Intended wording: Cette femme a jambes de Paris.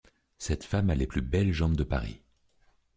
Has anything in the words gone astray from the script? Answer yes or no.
yes